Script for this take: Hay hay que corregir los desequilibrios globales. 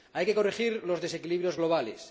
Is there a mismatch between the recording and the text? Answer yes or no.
yes